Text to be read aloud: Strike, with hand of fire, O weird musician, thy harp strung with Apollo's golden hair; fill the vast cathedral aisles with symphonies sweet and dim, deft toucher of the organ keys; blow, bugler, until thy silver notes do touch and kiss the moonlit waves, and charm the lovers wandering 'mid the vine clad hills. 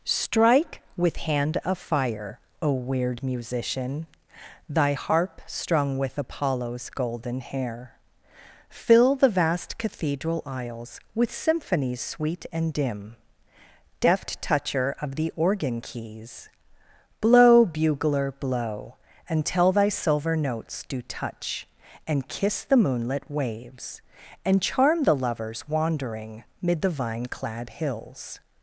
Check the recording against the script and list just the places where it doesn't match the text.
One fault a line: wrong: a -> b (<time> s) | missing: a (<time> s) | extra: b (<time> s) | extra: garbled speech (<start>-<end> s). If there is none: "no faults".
extra: blow (18.3 s)